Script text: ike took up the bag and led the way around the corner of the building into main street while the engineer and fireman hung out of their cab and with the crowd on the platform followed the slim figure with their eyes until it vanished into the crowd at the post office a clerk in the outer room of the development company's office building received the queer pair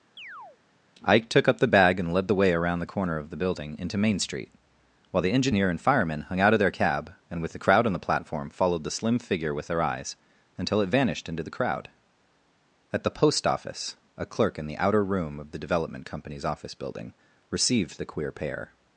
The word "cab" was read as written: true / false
true